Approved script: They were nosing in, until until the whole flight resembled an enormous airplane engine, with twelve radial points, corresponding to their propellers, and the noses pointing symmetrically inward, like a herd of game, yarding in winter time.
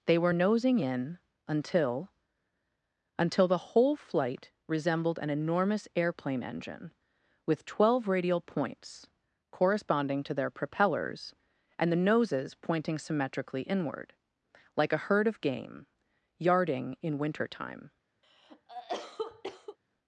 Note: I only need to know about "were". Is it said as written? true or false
true